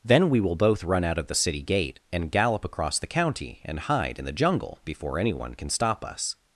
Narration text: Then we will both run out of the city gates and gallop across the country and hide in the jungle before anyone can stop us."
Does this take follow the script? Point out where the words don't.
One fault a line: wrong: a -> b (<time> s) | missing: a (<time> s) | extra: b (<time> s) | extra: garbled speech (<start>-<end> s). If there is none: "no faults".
wrong: gates -> gate (1.6 s)
wrong: country -> county (3.1 s)